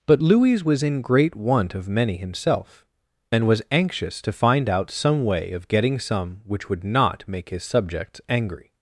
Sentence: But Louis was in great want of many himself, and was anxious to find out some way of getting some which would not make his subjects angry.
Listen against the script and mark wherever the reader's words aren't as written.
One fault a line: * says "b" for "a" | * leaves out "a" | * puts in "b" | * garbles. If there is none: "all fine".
all fine